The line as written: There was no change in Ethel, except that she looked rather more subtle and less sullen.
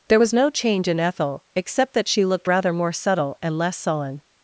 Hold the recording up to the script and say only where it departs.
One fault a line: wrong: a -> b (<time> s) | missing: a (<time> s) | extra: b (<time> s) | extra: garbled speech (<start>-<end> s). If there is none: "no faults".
no faults